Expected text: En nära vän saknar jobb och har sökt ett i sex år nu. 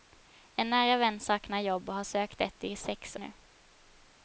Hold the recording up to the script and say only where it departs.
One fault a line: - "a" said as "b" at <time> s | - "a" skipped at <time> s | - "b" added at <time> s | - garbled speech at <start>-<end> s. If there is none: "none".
- "år" skipped at 3.2 s